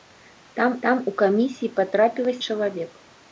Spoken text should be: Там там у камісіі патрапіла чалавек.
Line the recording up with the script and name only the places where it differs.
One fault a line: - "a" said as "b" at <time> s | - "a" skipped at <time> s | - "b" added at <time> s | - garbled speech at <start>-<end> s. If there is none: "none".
none